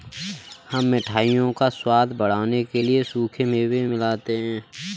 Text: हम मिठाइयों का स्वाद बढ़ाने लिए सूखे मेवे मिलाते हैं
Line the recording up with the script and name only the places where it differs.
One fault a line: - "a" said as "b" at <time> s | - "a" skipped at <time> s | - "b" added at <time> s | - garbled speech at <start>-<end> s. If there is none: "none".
- "के" added at 2.6 s